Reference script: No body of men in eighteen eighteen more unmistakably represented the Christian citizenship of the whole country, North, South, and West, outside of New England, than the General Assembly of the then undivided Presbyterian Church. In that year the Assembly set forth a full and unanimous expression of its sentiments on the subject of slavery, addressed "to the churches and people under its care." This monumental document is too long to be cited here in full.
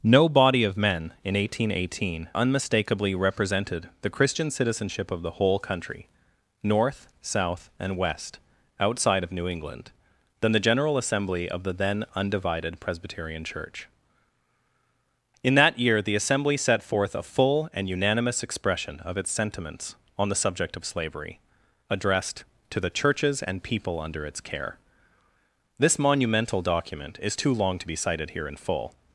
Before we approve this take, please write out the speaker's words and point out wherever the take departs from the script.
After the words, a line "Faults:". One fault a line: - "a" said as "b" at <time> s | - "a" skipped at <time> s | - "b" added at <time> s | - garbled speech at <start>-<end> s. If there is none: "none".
No body of men in eighteen eighteen unmistakably represented the Christian citizenship of the whole country, North, South, and West, outside of New England, than the General Assembly of the then undivided Presbyterian Church. In that year the Assembly set forth a full and unanimous expression of its sentiments on the subject of slavery, addressed "to the churches and people under its care." This monumental document is too long to be cited here in full.
Faults:
- "more" skipped at 2.3 s